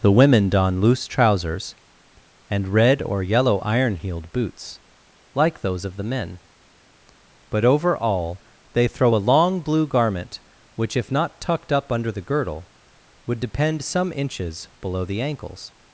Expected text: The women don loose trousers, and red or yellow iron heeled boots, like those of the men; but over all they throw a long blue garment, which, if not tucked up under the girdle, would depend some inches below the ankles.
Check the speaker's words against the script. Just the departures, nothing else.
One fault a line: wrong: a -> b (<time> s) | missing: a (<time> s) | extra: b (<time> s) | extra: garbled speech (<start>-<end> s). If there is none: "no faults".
no faults